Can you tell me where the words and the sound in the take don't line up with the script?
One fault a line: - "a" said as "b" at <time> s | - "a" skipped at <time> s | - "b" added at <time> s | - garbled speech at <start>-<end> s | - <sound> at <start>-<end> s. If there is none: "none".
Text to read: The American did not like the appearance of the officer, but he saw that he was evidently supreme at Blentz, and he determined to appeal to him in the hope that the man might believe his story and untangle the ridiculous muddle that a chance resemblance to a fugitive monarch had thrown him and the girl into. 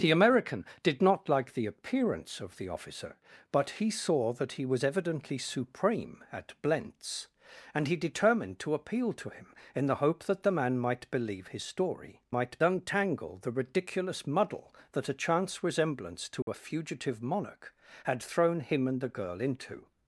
- "and" said as "might" at 12.3 s
- dropout at 16.4-16.5 s